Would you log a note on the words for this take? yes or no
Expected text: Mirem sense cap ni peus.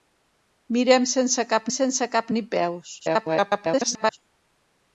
yes